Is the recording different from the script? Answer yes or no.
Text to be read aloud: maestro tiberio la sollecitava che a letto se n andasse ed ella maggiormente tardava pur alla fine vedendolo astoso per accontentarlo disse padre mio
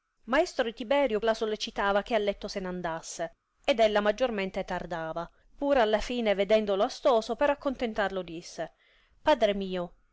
no